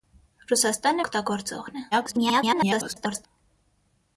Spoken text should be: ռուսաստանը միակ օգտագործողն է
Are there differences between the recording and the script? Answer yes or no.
yes